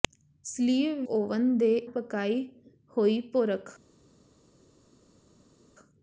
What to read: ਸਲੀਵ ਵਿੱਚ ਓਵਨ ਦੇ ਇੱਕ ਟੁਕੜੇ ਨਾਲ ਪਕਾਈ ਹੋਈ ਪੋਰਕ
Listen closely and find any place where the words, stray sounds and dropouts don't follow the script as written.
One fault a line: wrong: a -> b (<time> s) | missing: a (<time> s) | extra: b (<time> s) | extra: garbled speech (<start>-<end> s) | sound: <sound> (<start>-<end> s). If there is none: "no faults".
missing: ਵਿੱਚ (1.0 s)
missing: ਇੱਕ ਟੁਕੜੇ ਨਾਲ (1.7 s)